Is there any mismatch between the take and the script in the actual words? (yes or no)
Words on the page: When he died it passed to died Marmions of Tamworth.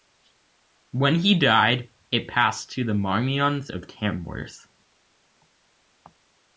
yes